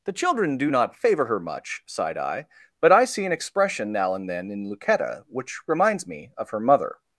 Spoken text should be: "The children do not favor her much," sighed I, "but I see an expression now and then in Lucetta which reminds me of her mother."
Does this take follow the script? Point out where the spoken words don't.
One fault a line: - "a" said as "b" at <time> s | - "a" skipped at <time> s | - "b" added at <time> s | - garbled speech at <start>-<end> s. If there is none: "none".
none